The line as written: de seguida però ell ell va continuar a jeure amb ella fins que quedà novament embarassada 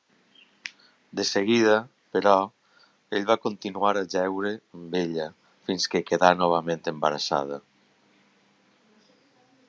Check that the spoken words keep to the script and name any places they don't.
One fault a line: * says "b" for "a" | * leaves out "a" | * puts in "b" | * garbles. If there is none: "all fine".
* leaves out "ell"